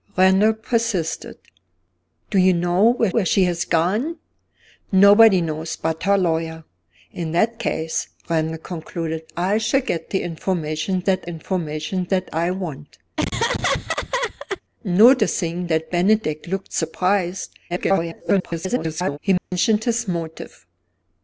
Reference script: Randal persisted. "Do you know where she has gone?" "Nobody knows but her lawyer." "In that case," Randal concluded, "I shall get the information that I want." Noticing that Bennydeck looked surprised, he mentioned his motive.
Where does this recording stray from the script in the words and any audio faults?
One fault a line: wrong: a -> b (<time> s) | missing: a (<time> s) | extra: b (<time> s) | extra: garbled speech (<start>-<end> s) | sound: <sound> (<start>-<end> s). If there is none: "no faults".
extra: where (3.1 s)
extra: information that (11.2 s)
sound: laugh (13.2-14.6 s)
extra: garbled speech (17.7-19.2 s)
sound: dropout (19.4-19.5 s)